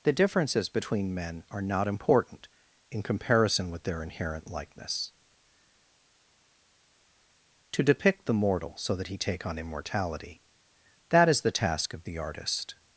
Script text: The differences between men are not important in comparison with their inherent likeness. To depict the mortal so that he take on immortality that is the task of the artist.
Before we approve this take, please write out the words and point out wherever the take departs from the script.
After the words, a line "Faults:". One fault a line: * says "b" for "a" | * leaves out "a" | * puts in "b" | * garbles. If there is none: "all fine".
The differences between men are not important in comparison with their inherent likeness. To depict the mortal so that he take on immortality that is the task of the artist.
Faults:
all fine